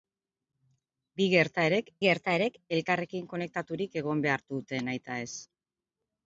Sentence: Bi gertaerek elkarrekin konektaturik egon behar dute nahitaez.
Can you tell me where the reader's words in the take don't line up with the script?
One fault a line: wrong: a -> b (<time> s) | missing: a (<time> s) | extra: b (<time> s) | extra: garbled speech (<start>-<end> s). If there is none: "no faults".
extra: gertaerek (2.0 s)